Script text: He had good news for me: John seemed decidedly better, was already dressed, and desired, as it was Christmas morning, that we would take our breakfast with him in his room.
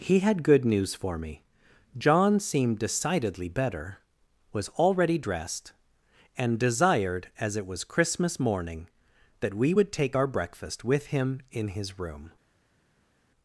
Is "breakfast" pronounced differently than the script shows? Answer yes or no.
no